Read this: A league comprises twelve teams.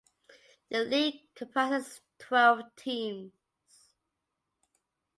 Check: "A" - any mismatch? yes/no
yes